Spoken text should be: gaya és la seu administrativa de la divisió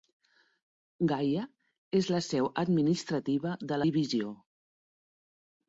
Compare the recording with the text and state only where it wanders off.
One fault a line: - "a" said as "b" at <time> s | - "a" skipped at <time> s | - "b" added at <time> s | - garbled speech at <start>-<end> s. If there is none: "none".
- "la" skipped at 3.8 s